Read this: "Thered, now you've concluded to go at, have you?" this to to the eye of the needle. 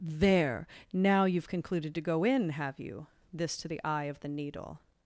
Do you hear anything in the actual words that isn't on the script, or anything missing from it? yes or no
yes